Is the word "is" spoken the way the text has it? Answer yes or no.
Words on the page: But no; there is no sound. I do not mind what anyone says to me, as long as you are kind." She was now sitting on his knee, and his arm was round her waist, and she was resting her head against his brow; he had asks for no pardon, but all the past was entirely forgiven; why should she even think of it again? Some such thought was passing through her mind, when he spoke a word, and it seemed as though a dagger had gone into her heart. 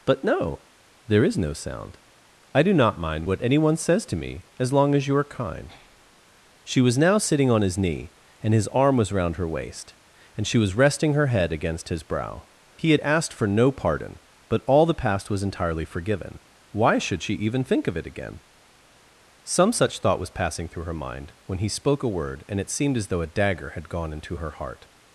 yes